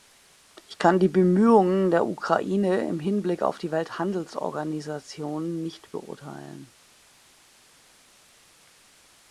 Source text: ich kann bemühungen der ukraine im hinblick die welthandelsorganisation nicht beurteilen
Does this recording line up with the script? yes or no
no